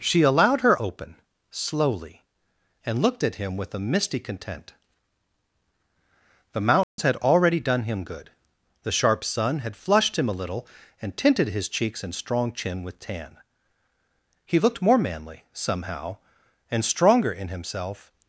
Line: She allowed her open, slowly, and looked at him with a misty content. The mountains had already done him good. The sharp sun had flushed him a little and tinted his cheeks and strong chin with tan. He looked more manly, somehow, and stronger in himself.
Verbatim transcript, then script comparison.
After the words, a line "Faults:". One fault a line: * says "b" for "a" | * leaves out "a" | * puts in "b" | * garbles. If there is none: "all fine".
She allowed her open, slowly, and looked at him with a misty content. The mountains had already done him good. The sharp sun had flushed him a little and tinted his cheeks and strong chin with tan. He looked more manly, somehow, and stronger in himself.
Faults:
all fine